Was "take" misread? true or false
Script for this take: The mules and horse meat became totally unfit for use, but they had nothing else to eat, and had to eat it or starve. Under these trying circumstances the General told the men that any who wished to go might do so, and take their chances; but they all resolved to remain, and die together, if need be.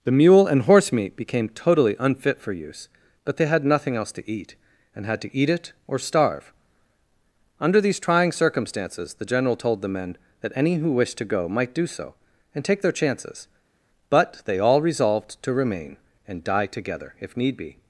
false